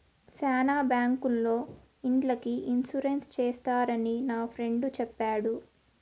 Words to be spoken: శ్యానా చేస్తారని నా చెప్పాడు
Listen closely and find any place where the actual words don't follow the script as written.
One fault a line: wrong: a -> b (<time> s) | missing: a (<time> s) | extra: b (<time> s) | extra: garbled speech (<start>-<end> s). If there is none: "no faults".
extra: బ్యాంకుల్లో ఇండ్లకి ఇన్సూరెన్స్ (0.8 s)
extra: ఫ్రెండు (4.4 s)